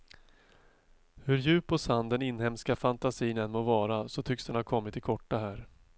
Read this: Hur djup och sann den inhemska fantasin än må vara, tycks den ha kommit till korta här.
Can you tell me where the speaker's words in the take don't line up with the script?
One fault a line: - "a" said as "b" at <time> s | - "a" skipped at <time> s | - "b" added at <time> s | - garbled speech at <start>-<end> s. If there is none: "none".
- "så" added at 4.1 s